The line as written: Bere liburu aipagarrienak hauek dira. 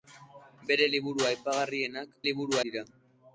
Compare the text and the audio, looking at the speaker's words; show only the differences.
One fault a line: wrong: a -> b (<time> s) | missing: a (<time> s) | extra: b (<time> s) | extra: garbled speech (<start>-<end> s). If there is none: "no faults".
wrong: hauek -> liburu (2.3 s)